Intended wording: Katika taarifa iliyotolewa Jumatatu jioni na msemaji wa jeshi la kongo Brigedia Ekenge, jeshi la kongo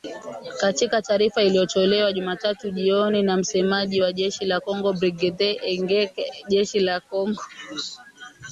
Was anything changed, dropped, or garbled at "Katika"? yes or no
no